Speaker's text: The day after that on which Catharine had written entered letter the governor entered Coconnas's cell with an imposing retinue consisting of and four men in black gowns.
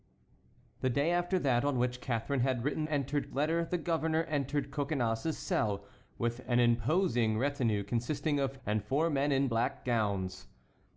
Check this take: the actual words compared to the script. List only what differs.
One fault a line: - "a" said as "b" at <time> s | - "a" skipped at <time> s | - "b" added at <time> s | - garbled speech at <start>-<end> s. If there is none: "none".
none